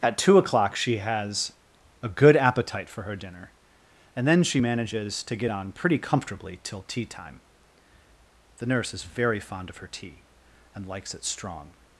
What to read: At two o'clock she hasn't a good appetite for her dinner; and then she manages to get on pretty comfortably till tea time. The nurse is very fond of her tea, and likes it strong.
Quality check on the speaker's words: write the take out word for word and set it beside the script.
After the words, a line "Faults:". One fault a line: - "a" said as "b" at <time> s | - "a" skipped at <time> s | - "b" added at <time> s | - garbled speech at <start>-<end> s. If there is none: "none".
At two o'clock she has a good appetite for her dinner; and then she manages to get on pretty comfortably till tea time. The nurse is very fond of her tea, and likes it strong.
Faults:
- "hasn't" said as "has" at 1.0 s